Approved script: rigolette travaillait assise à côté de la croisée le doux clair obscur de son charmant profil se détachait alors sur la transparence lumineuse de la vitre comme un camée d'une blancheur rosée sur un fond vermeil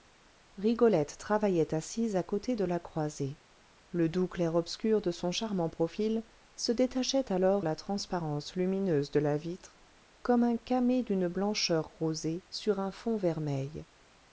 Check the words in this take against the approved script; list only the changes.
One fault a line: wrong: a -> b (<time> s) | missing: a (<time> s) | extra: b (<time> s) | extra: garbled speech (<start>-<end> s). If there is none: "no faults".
missing: sur (7.7 s)